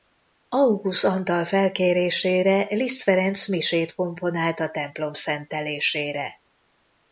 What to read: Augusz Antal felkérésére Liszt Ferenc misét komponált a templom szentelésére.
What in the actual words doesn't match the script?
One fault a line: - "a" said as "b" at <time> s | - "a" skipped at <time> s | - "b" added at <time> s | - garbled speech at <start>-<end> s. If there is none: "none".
none